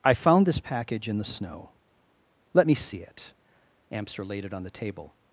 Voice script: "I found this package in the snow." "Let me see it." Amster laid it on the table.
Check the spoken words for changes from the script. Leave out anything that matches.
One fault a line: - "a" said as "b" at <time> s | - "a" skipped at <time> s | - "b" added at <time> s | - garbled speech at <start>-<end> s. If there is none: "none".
none